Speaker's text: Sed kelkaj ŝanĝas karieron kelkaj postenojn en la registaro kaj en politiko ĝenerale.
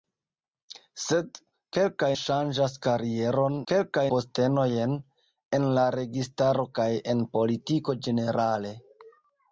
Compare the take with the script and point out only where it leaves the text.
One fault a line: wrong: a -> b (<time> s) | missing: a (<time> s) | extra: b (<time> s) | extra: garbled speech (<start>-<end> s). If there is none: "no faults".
no faults